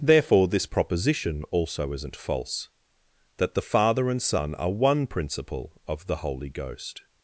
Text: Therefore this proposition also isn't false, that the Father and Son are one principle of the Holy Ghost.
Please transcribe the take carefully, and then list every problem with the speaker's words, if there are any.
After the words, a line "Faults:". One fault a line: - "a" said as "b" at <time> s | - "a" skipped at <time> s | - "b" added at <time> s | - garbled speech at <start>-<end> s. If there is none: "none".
Therefore this proposition also isn't false, that the Father and Son are one principle of the Holy Ghost.
Faults:
none